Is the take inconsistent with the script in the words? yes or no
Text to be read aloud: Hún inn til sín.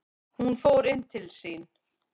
yes